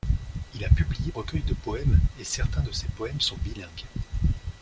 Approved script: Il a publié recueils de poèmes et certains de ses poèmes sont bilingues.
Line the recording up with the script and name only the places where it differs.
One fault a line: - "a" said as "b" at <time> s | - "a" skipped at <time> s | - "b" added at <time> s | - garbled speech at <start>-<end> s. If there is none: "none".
none